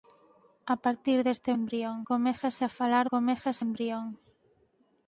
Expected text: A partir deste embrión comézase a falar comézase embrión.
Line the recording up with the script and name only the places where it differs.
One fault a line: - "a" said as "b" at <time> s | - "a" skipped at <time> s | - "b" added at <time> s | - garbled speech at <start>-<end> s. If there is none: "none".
none